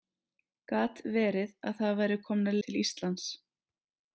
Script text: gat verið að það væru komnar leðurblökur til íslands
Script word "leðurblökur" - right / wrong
wrong